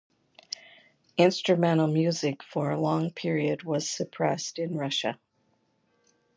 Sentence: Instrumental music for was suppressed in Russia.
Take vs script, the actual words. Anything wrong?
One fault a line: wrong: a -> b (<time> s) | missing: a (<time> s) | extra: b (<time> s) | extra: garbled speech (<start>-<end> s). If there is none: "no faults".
extra: a long period (2.7 s)